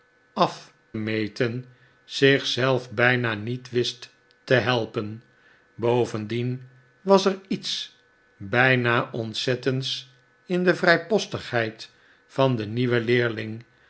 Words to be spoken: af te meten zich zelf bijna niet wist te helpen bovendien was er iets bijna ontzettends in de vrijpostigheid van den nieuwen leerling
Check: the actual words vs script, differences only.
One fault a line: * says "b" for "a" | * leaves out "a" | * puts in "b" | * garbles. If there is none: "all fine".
* leaves out "te"